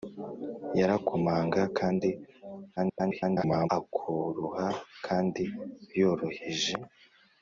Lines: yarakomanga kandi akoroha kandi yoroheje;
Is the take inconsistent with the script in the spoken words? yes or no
yes